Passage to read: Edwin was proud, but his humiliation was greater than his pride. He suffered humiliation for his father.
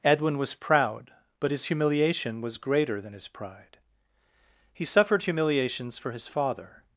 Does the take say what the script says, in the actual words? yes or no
no